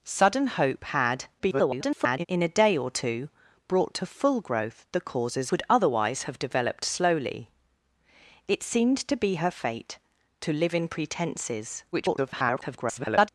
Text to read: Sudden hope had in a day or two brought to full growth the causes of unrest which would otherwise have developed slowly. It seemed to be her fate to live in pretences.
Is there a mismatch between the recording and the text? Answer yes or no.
yes